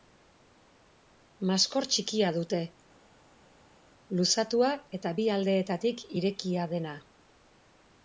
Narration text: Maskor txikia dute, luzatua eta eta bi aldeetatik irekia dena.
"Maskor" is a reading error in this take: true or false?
false